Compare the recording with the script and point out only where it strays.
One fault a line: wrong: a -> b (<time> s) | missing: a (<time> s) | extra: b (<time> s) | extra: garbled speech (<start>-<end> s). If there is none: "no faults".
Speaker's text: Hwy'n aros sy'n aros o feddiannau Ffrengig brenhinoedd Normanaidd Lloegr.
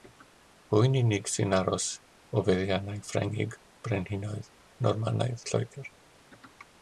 wrong: aros -> unig (1.0 s)